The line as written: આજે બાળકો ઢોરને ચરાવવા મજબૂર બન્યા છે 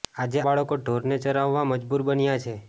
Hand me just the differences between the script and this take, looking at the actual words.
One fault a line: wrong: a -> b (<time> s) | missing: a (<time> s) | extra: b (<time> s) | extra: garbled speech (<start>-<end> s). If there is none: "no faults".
no faults